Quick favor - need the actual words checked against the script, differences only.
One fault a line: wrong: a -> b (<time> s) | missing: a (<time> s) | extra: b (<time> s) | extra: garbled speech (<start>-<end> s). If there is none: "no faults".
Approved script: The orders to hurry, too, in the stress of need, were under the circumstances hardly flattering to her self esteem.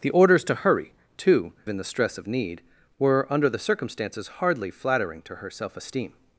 no faults